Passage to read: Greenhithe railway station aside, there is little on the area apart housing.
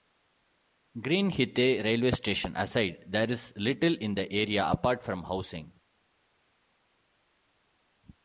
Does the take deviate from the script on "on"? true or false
true